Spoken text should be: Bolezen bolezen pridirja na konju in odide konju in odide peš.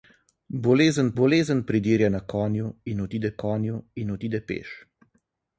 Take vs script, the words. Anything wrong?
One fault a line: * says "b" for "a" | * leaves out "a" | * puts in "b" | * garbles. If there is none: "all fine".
all fine